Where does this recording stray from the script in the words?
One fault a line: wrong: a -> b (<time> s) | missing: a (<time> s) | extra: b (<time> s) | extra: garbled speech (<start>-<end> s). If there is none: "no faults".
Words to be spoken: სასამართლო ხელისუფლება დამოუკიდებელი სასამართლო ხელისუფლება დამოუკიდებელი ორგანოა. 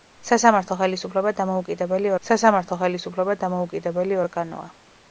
no faults